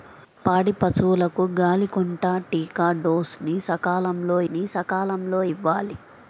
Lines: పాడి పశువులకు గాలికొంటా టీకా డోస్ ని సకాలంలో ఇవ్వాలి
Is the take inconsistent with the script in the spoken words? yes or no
yes